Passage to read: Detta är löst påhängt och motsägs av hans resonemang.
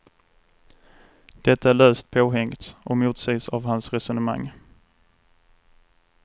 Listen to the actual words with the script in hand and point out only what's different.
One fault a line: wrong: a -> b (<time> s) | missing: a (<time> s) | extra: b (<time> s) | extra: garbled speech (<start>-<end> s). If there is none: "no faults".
no faults